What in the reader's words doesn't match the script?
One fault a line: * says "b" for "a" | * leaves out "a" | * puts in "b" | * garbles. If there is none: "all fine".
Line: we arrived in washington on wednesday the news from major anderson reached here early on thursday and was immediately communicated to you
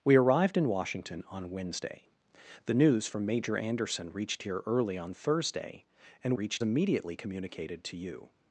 * says "reached" for "was"